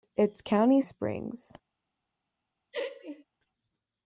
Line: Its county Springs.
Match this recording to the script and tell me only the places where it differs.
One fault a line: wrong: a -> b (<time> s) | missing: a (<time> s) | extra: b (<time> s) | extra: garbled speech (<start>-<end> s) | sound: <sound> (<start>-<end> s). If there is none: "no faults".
sound: laugh (2.7-3.2 s)